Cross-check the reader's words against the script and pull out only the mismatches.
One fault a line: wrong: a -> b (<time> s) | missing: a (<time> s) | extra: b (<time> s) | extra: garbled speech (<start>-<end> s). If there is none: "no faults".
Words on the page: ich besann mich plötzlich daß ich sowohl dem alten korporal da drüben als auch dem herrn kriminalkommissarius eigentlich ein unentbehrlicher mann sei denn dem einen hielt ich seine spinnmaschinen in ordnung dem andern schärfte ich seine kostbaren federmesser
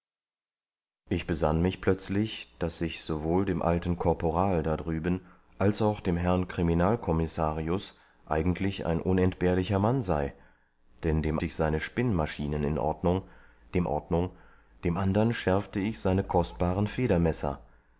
missing: einen hielt (11.4 s)
extra: ordnung dem (13.8 s)